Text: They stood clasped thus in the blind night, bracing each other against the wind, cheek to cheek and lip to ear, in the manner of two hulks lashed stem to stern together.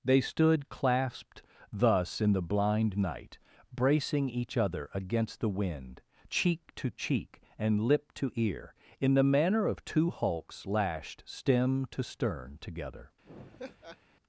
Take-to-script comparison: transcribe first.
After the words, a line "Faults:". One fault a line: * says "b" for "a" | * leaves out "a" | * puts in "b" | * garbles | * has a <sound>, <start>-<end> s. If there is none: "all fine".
They stood clasped thus in the blind night, bracing each other against the wind, cheek to cheek and lip to ear, in the manner of two hulks lashed stem to stern together.
Faults:
* has a laugh, 13.2-14.0 s